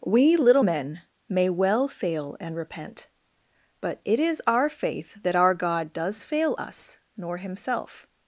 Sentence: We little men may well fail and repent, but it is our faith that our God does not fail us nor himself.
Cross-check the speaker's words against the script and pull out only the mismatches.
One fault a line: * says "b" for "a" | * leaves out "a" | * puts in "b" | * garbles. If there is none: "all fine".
* leaves out "not"